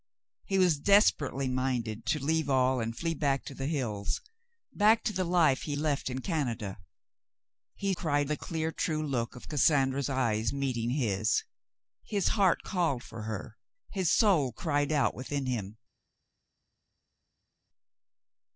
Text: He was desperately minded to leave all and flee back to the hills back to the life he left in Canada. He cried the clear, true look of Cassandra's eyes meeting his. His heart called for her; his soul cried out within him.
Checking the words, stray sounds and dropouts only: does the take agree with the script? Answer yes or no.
yes